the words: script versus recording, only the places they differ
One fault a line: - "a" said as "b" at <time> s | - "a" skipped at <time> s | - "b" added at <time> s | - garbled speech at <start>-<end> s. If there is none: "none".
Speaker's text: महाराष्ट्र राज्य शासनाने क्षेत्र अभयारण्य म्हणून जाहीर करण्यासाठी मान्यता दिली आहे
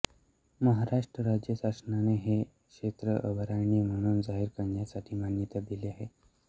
- "हे" added at 2.2 s